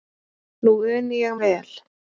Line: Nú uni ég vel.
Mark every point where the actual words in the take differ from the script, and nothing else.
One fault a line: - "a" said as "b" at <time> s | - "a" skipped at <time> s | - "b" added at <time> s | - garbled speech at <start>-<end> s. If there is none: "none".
none